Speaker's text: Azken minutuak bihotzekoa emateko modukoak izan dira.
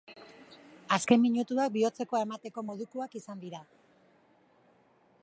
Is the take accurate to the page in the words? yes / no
yes